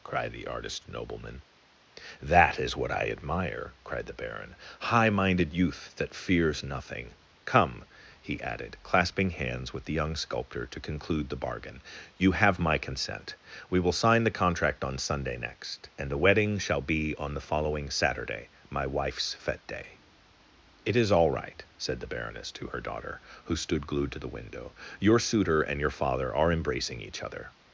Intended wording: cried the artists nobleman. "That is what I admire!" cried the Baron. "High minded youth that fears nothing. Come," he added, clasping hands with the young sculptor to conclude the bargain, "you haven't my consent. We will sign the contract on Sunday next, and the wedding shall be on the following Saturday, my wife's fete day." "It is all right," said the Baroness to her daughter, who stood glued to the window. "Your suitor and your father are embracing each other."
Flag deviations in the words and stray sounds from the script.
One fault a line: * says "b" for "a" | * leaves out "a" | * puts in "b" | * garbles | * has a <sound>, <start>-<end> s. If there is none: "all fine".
* says "artist" for "artists"
* says "have" for "haven't"